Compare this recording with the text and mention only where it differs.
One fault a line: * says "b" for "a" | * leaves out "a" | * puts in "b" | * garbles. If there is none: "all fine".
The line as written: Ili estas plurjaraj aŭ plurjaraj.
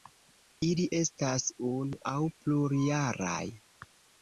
* says "unu" for "plurjaraj"